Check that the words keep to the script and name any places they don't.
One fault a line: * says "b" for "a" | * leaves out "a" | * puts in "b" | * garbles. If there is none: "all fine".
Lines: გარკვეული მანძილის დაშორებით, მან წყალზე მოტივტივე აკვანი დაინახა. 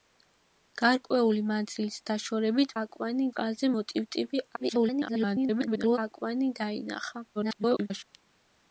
* says "აკვანი" for "მან"
* garbles
* garbles